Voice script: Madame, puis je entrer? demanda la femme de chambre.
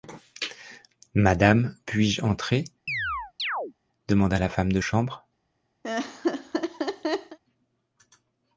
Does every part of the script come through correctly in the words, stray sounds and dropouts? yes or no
no